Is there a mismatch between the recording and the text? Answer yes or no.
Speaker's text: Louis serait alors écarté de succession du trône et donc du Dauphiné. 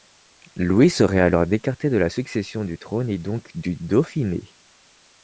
yes